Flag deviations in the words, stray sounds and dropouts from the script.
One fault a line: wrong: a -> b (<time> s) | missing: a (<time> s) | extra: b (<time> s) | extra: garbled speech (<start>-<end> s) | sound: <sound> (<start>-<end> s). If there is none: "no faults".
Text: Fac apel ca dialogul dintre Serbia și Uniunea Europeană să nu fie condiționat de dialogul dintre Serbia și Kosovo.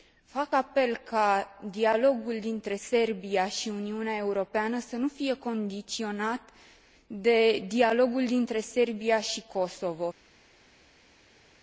no faults